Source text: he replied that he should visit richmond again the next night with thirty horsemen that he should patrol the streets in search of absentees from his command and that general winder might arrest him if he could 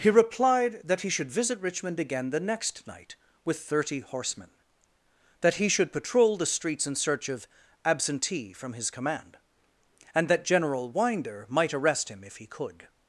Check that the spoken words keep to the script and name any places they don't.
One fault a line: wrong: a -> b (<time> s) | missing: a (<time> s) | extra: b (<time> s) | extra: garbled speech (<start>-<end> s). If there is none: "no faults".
wrong: absentees -> absentee (7.8 s)